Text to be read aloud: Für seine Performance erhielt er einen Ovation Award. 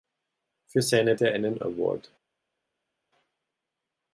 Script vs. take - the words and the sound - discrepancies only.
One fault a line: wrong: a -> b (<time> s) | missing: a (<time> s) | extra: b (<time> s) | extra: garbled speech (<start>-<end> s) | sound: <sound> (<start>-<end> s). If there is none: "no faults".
missing: Performance erhielt (1.1 s)
missing: Ovation (1.6 s)